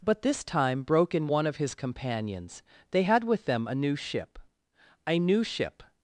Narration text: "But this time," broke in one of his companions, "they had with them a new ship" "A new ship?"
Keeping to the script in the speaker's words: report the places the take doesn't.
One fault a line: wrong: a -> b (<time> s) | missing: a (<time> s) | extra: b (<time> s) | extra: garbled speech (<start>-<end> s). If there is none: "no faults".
no faults